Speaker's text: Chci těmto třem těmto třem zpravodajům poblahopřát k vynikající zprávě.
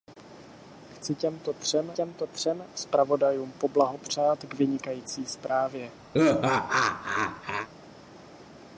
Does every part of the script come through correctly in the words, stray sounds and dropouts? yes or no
no